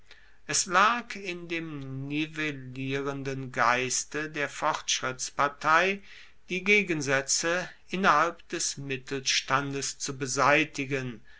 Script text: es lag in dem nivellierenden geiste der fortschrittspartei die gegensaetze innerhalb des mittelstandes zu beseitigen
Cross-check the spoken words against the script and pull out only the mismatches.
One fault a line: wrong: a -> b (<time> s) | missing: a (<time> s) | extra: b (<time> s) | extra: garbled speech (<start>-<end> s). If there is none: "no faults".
no faults